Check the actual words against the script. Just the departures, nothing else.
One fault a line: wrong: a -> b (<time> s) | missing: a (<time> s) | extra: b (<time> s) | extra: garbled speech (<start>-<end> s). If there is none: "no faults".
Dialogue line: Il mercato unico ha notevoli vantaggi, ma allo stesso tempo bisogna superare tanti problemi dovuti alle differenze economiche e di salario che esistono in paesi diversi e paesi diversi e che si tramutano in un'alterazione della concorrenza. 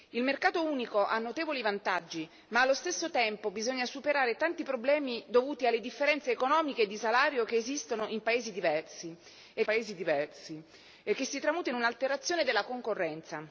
no faults